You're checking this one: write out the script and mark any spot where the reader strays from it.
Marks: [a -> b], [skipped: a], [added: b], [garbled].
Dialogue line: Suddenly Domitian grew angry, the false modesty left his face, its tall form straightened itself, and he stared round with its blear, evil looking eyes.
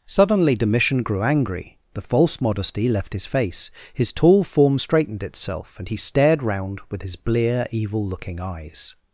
Suddenly Domitian grew angry, the false modesty left his face, [its -> his] tall form straightened itself, and he stared round with [its -> his] blear, evil looking eyes.